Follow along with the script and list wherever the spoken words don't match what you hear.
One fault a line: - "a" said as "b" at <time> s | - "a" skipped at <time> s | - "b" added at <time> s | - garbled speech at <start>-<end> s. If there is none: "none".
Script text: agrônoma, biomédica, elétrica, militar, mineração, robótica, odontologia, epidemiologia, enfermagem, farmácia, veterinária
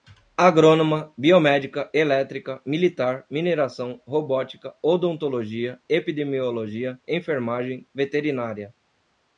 - "farmácia" skipped at 7.8 s